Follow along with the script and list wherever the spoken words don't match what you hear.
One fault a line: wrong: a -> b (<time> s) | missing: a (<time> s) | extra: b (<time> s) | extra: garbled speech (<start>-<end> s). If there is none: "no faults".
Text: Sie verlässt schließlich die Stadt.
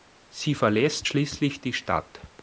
no faults